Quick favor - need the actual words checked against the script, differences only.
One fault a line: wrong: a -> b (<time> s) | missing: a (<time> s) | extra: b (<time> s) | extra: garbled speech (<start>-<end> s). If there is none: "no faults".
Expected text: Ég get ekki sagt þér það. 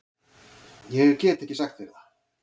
no faults